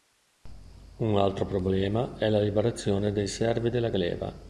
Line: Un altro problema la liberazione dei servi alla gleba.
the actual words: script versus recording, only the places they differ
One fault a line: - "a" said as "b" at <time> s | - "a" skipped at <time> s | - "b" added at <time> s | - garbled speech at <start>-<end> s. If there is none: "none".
- "è" added at 2.2 s
- "alla" said as "della" at 3.7 s